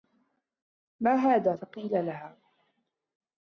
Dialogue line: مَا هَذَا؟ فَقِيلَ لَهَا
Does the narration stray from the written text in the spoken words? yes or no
no